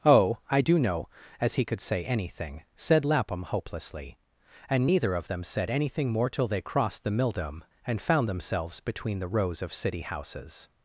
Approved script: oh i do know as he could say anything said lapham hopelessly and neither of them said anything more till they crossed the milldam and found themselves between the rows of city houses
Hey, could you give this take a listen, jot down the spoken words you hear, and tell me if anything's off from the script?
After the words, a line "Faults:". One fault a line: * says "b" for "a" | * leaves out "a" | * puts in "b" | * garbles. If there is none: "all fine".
oh i do know as he could say anything said lapham hopelessly and neither of them said anything more till they crossed the milldam and found themselves between the rows of city houses
Faults:
all fine